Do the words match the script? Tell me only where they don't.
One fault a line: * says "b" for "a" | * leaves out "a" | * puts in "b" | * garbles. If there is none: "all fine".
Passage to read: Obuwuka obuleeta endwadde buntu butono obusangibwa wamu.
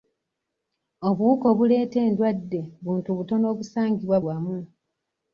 all fine